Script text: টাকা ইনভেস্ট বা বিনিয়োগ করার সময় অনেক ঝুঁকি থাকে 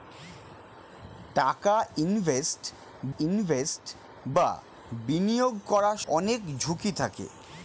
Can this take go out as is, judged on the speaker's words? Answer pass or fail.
fail